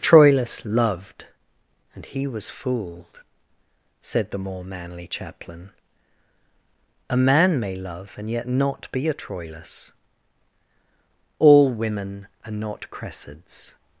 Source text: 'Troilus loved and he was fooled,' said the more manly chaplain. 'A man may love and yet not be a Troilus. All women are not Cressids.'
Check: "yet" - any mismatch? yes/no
no